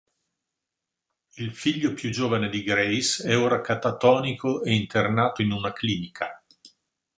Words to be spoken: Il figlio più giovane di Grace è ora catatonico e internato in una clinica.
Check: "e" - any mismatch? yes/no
no